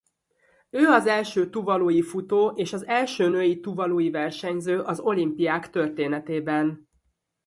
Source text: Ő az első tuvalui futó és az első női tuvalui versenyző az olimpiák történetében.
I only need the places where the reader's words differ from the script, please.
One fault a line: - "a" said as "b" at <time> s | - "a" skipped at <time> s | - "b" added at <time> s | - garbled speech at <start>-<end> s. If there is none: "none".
none